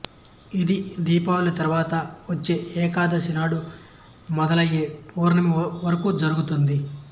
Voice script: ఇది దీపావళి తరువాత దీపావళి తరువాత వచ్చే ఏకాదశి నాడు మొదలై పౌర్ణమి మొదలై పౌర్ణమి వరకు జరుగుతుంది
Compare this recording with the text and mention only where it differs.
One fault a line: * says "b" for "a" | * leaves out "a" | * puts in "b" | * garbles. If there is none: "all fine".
* leaves out "దీపావళి తరువాత"
* leaves out "మొదలై పౌర్ణమి"